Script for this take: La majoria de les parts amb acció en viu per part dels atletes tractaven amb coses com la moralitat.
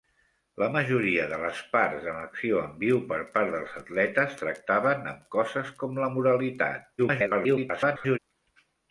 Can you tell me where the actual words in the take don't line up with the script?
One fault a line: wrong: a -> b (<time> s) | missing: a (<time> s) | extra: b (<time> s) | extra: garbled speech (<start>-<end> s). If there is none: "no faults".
extra: garbled speech (7.0-8.2 s)